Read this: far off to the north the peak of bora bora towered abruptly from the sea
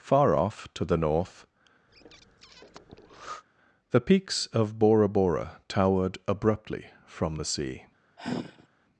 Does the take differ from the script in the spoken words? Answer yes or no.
yes